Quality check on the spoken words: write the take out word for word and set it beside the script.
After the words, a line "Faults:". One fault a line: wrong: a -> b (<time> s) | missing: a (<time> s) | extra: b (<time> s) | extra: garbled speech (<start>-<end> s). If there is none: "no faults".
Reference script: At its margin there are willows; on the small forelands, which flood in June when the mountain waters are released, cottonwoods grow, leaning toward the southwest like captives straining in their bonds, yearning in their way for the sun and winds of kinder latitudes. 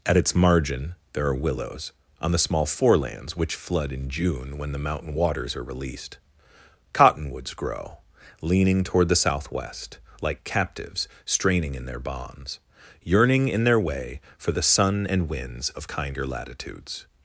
At its margin there are willows; on the small forelands, which flood in June when the mountain waters are released, cottonwoods grow, leaning toward the southwest like captives straining in their bonds, yearning in their way for the sun and winds of kinder latitudes.
Faults:
no faults